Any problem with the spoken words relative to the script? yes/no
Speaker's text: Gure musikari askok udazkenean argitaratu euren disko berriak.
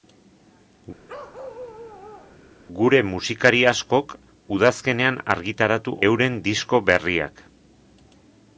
no